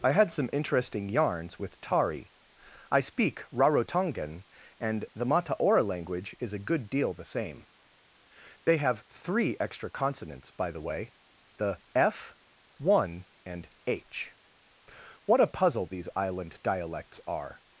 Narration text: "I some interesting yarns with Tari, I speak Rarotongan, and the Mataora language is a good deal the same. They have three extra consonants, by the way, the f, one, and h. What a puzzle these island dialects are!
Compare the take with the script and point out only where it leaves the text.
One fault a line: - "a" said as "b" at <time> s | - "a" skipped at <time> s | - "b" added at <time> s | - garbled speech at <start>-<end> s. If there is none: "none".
- "had" added at 0.1 s